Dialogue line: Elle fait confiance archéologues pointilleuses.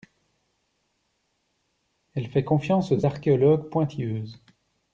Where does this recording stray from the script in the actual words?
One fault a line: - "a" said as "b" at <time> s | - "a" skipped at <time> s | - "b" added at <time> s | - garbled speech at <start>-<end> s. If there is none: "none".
- "aux" added at 2.9 s